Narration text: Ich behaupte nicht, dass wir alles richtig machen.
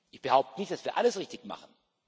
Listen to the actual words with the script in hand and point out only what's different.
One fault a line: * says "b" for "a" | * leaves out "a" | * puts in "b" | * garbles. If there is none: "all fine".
all fine